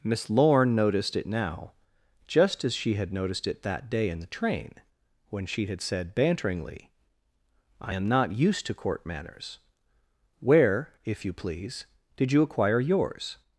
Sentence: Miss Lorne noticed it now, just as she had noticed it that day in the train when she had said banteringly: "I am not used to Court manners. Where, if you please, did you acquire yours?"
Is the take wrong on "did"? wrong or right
right